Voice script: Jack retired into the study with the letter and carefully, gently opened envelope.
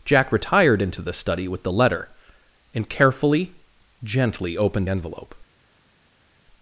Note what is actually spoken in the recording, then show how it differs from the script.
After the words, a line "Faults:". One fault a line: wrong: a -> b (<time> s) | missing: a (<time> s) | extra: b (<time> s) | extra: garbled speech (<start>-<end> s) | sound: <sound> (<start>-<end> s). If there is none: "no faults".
Jack retired into the study with the letter and carefully, gently opened envelope.
Faults:
no faults